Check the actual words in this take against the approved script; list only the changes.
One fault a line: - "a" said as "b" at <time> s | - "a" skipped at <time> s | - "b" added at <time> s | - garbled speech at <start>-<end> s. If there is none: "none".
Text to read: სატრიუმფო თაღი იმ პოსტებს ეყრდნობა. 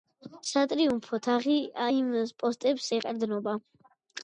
none